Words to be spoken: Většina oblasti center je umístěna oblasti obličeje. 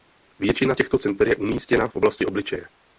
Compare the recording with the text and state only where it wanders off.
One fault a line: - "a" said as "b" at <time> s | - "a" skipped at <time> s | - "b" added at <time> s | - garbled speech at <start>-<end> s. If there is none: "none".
- "oblasti" said as "těchto" at 0.7 s
- "v" added at 1.8 s